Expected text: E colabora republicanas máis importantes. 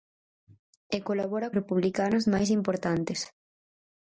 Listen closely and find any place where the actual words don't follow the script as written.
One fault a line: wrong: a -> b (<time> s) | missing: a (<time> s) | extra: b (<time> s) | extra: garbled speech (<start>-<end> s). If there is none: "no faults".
no faults